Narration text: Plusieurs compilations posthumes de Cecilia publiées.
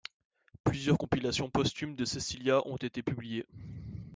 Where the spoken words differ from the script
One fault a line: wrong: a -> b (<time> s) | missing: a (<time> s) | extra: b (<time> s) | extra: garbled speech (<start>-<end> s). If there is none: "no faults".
extra: ont été (2.6 s)